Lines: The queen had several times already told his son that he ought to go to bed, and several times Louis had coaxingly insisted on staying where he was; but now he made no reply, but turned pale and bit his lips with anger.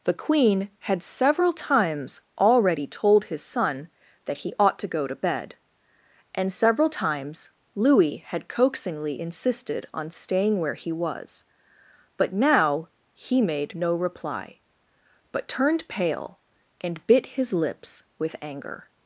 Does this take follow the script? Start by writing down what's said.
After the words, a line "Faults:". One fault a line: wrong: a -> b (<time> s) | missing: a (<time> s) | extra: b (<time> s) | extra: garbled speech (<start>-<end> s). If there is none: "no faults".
The queen had several times already told his son that he ought to go to bed, and several times Louis had coaxingly insisted on staying where he was; but now he made no reply, but turned pale and bit his lips with anger.
Faults:
no faults